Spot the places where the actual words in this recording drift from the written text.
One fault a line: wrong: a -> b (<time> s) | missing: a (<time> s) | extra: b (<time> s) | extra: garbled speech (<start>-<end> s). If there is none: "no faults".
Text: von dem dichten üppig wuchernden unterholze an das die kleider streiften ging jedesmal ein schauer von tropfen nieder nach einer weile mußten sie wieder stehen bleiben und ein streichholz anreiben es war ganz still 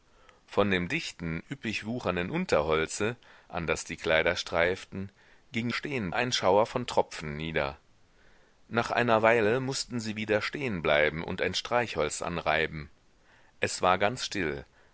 wrong: jedesmal -> stehen (5.7 s)